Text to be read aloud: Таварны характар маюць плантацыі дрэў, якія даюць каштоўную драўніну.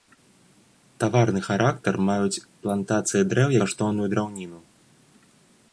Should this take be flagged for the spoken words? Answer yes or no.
yes